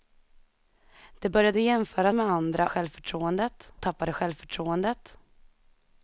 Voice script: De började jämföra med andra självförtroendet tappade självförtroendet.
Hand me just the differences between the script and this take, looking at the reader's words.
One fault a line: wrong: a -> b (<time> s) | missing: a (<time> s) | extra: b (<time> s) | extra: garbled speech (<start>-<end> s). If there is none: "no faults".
no faults